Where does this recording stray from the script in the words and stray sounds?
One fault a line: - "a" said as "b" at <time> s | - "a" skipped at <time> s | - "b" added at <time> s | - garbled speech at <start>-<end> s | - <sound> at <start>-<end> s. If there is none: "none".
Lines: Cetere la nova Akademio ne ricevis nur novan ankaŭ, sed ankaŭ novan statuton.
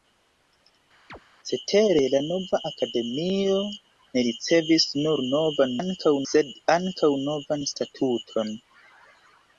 - chirp at 1.1-1.2 s